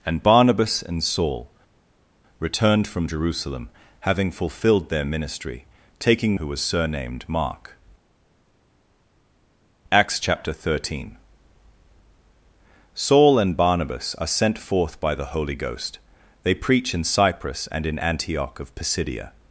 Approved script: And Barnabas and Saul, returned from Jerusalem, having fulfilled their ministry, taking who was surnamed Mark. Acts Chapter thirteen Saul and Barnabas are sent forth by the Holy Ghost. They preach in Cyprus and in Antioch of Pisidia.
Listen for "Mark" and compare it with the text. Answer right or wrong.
right